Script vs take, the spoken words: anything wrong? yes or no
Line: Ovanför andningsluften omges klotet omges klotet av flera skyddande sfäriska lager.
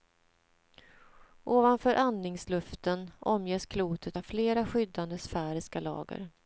yes